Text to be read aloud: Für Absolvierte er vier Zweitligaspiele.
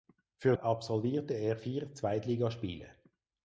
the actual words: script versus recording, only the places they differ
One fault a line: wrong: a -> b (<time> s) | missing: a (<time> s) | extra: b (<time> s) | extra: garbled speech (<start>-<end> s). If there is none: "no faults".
no faults